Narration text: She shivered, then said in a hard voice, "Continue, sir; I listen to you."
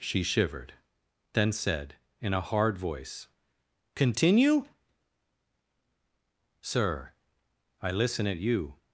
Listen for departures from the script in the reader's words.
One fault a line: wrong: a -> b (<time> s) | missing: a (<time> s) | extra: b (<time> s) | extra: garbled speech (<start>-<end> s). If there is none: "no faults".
wrong: to -> at (8.3 s)